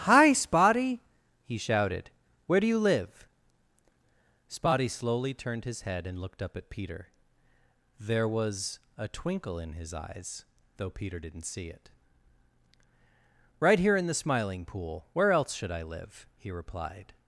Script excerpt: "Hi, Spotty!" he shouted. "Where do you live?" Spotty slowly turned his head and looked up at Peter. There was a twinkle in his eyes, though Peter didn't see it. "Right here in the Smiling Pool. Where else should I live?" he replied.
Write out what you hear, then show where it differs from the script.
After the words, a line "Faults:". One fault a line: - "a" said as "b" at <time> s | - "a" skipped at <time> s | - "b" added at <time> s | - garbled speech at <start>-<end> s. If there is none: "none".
"Hi, Spotty!" he shouted. "Where do you live?" Spotty slowly turned his head and looked up at Peter. There was a twinkle in his eyes, though Peter didn't see it. "Right here in the Smiling Pool. Where else should I live?" he replied.
Faults:
none